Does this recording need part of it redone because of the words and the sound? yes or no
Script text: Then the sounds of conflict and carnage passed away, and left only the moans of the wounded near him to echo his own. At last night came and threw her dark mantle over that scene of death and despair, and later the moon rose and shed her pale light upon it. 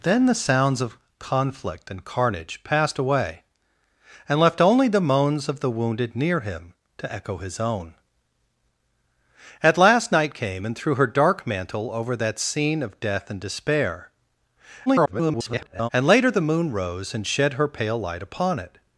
yes